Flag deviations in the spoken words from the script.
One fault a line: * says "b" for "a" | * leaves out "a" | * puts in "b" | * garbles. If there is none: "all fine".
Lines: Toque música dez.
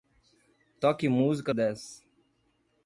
all fine